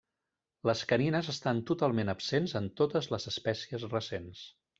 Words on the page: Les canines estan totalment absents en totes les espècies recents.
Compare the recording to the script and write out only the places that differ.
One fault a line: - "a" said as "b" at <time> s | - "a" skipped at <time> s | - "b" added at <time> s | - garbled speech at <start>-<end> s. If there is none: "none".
none